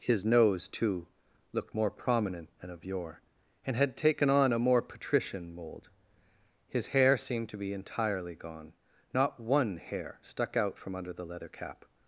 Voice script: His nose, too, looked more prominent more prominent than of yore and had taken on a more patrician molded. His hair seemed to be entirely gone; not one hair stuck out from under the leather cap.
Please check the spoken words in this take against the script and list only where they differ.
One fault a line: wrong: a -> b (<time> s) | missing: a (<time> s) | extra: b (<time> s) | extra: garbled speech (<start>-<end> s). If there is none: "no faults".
missing: more prominent (2.5 s)
wrong: molded -> mold (5.5 s)